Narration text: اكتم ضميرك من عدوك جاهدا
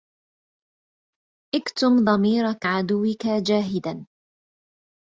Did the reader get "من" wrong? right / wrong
wrong